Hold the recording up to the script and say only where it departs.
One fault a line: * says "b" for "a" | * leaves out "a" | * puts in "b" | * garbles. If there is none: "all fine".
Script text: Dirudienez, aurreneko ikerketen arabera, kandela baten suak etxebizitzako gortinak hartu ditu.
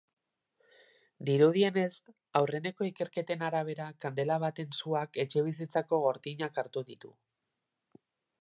all fine